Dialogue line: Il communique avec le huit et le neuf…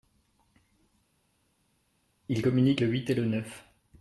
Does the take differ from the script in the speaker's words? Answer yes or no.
yes